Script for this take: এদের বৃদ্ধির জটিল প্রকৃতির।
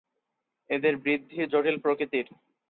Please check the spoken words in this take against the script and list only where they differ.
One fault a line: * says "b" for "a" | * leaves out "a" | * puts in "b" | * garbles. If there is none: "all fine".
all fine